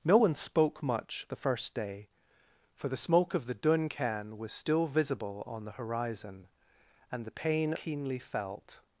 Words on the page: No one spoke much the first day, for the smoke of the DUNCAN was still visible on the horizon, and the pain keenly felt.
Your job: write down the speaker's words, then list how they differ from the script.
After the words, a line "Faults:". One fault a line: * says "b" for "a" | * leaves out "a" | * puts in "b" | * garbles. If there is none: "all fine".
No one spoke much the first day, for the smoke of the DUNCAN was still visible on the horizon, and the pain keenly felt.
Faults:
all fine